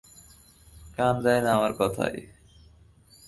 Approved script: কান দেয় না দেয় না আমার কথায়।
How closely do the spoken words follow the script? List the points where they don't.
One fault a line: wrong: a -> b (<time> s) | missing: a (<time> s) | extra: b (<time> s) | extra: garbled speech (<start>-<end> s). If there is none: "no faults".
missing: দেয় না (1.5 s)